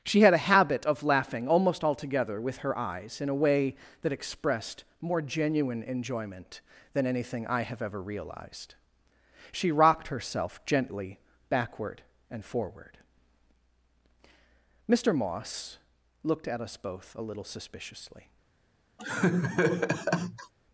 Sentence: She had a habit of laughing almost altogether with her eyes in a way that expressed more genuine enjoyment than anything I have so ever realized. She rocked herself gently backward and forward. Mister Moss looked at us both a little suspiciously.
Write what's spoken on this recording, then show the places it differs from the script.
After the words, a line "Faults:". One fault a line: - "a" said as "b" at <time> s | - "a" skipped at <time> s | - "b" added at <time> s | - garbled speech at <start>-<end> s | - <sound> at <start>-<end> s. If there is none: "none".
She had a habit of laughing almost altogether with her eyes in a way that expressed more genuine enjoyment than anything I have ever realized. She rocked herself gently backward and forward. Mister Moss looked at us both a little suspiciously.
Faults:
- "so" skipped at 7.8 s
- laugh at 19.0-20.5 s